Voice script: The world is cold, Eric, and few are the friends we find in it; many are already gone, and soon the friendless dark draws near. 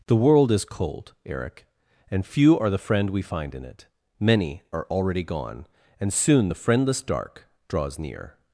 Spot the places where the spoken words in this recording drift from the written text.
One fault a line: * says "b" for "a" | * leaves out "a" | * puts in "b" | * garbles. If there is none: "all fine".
* says "friend" for "friends"